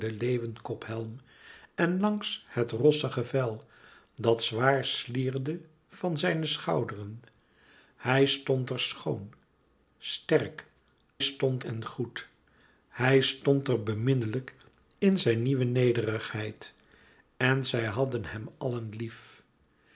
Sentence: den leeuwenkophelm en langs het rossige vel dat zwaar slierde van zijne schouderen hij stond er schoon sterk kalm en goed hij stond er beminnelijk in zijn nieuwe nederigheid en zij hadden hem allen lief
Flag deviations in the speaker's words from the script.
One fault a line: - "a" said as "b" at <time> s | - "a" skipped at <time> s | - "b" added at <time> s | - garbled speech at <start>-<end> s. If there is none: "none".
- "kalm" said as "stond" at 11.2 s